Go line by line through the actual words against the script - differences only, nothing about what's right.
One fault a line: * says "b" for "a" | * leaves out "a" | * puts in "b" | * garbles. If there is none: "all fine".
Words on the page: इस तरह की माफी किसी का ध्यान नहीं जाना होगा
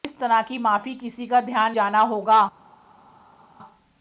* leaves out "नहीं"